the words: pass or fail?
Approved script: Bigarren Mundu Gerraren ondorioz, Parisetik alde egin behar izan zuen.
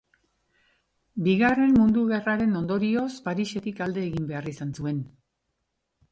pass